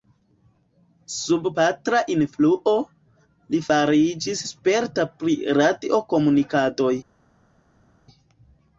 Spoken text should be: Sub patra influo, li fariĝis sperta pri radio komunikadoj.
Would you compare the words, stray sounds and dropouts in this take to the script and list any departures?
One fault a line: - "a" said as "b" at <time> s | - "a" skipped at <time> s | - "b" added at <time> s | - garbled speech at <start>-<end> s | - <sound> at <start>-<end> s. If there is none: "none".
none